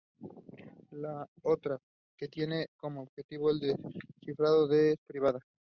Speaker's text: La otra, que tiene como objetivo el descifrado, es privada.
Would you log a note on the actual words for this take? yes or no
no